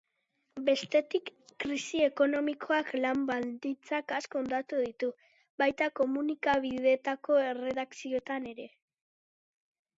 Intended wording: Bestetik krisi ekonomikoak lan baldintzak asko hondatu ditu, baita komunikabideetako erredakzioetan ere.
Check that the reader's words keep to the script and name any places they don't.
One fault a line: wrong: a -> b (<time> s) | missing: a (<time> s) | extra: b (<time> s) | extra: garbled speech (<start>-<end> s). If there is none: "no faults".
no faults